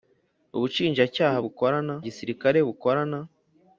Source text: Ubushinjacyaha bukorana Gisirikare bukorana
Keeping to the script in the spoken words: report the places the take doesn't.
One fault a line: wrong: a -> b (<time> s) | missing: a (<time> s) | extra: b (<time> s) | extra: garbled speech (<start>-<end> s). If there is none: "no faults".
no faults